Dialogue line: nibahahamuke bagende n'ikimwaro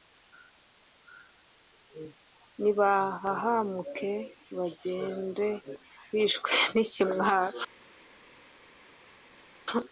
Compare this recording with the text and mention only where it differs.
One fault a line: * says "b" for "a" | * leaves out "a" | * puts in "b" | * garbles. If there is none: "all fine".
* puts in "bishwe"